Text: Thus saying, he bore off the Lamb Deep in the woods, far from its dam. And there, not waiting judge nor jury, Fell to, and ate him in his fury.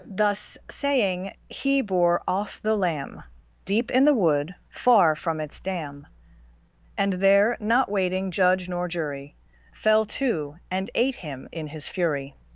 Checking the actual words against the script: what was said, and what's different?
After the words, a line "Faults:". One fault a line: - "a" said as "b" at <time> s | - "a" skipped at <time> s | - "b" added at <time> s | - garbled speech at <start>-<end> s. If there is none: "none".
Thus saying, he bore off the Lamb Deep in the wood, far from its dam. And there, not waiting judge nor jury, Fell to, and ate him in his fury.
Faults:
- "woods" said as "wood" at 4.2 s